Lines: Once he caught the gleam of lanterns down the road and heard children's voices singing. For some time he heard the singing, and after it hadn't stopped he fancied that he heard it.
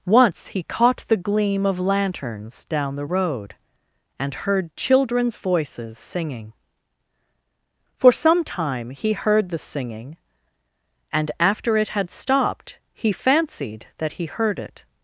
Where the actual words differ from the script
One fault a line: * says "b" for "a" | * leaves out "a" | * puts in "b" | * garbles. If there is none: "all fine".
* says "had" for "hadn't"